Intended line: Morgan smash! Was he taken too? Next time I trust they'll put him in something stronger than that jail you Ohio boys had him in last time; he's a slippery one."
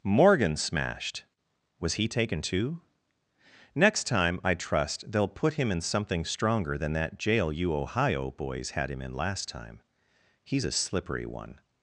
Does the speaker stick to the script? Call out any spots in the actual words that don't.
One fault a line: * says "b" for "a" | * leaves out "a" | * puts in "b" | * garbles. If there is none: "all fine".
* says "smashed" for "smash"